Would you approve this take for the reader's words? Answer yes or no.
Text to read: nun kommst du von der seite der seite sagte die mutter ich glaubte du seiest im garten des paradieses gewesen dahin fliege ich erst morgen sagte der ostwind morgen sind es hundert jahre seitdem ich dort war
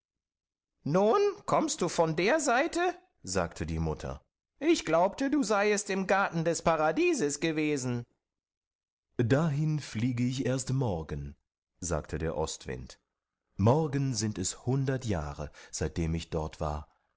no